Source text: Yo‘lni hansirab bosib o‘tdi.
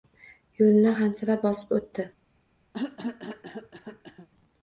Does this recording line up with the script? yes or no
yes